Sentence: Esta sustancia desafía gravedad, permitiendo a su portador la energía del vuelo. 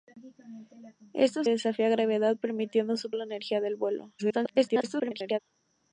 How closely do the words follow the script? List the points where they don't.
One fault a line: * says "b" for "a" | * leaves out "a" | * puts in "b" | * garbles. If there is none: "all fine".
* leaves out "sustancia"
* leaves out "portador"
* garbles